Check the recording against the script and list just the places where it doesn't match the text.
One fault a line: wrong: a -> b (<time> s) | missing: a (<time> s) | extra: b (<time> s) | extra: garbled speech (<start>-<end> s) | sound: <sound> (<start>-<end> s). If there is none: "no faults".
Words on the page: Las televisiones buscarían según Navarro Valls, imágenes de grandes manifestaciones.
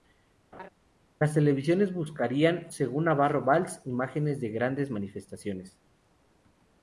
sound: laugh (0.5-0.7 s)